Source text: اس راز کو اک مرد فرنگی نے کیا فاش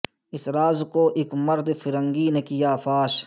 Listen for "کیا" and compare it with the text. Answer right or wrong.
right